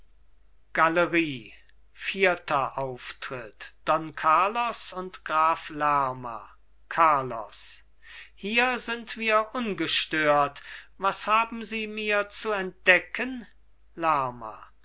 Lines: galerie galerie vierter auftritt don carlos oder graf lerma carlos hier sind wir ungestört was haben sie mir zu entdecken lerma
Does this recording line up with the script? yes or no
no